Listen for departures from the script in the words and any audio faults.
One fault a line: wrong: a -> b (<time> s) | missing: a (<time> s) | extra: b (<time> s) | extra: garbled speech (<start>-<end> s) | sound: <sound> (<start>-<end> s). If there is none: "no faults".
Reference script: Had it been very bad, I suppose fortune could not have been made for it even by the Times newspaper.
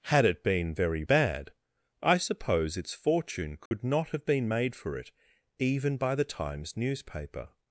extra: its (2.8 s)
sound: dropout (3.7-3.7 s)